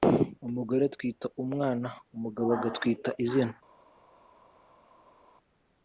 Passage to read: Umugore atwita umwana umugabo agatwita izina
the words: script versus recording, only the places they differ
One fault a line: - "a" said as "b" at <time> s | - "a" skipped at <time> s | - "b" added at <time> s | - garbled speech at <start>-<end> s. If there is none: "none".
none